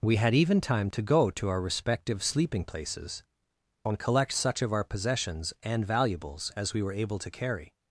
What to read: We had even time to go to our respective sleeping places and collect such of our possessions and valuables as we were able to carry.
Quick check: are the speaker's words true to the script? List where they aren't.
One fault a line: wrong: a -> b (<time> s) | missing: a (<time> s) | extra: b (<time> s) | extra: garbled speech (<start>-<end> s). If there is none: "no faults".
no faults